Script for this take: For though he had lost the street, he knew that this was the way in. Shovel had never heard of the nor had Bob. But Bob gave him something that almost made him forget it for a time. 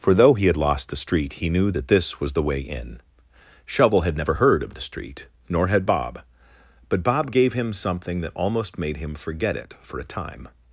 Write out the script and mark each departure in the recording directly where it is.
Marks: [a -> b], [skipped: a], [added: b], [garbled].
For though he had lost the street, he knew that this was the way in. Shovel had never heard of the [added: street] nor had Bob. But Bob gave him something that almost made him forget it for a time.